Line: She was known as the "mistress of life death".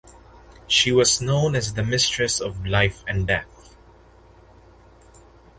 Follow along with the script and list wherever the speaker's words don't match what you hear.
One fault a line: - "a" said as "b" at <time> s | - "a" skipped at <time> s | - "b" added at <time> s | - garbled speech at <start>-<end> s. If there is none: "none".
- "and" added at 3.1 s